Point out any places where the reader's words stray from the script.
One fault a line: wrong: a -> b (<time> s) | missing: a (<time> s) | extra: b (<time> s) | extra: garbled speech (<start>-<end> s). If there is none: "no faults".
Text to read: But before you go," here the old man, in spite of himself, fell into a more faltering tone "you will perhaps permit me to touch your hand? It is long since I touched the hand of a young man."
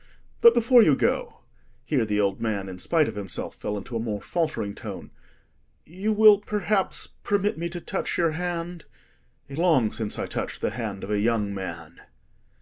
missing: is (9.6 s)